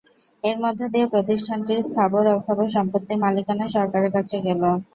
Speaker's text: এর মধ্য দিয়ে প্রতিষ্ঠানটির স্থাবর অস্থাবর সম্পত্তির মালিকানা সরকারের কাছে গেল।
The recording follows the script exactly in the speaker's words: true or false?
true